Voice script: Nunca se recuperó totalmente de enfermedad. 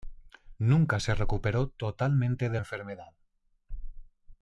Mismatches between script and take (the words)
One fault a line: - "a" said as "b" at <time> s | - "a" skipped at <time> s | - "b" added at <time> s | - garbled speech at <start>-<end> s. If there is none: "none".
none